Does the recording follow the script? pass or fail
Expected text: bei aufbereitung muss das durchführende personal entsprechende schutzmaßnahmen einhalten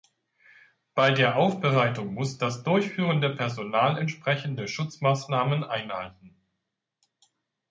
fail